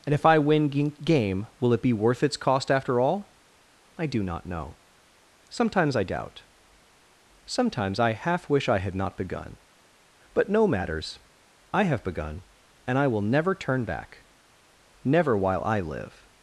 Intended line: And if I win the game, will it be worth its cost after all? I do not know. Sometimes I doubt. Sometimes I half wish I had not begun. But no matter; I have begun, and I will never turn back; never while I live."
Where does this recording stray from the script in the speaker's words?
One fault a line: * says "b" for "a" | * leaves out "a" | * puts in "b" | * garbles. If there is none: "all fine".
* leaves out "the"
* says "matters" for "matter"